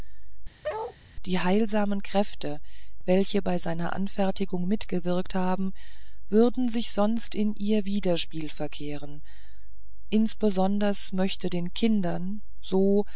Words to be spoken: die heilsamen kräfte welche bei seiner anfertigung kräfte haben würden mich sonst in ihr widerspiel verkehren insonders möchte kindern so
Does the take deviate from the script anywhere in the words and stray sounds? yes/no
yes